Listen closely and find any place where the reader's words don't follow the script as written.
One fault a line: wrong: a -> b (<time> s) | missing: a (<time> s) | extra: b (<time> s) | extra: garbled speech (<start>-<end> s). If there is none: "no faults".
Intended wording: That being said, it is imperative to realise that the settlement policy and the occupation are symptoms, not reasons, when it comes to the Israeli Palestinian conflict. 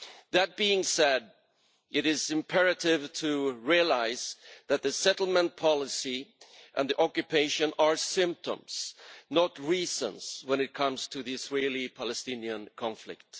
no faults